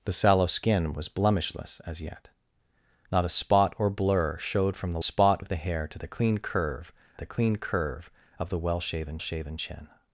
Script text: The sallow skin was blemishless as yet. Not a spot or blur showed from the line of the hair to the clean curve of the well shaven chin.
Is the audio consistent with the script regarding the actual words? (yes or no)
no